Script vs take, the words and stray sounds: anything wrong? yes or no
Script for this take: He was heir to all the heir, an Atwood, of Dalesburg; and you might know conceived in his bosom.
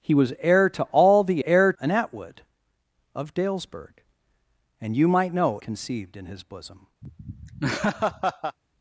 yes